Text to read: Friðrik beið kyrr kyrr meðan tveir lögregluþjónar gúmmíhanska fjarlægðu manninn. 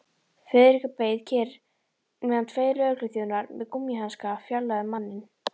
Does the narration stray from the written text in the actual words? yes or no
yes